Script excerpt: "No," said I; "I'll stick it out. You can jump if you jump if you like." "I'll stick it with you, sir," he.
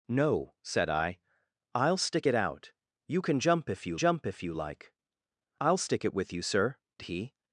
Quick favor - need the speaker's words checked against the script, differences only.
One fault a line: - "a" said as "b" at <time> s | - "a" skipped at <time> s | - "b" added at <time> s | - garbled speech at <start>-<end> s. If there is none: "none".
none